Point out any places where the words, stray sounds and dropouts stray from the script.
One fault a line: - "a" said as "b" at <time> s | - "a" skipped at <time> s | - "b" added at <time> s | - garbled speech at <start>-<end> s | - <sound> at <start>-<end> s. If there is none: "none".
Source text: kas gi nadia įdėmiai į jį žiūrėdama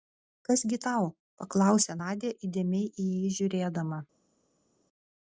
- "tau paklausė" added at 0.9 s